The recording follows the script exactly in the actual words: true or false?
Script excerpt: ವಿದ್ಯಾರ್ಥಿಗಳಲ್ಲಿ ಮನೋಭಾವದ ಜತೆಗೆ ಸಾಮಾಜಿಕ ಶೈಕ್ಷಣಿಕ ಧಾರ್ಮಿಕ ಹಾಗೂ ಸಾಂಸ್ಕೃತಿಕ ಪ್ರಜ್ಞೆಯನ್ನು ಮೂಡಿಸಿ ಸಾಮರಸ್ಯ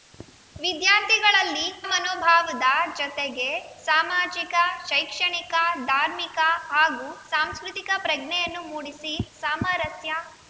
true